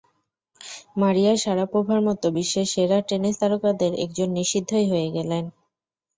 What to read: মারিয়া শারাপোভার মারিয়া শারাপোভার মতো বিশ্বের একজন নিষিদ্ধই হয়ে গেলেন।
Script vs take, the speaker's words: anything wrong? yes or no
yes